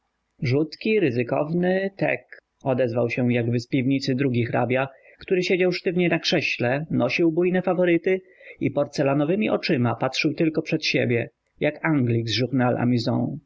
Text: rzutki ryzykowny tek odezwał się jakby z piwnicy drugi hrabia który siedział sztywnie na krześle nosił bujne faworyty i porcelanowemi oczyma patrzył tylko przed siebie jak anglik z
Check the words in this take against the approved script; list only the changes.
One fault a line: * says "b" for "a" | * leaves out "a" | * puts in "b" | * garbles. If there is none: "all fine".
all fine